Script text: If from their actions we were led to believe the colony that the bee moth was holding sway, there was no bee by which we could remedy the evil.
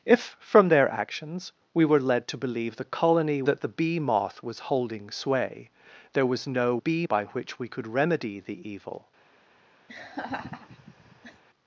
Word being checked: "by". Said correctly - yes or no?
yes